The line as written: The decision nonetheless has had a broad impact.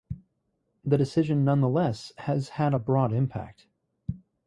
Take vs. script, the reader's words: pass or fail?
pass